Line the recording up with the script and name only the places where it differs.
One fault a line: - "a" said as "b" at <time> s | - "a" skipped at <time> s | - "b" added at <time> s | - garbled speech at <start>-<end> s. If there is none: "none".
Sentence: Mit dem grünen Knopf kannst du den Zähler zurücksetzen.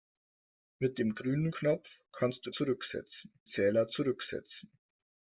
- "den" said as "zurücksetzen" at 2.5 s